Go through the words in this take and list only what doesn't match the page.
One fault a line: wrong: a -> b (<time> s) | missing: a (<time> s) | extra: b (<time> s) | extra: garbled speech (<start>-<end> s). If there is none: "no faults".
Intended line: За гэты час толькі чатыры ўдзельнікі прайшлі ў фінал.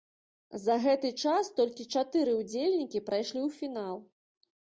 no faults